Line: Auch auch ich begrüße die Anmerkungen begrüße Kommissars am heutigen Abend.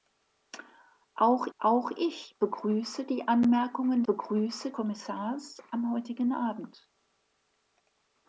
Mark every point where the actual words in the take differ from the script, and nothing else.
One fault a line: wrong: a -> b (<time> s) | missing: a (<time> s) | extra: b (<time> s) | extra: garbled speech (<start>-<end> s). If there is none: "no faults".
no faults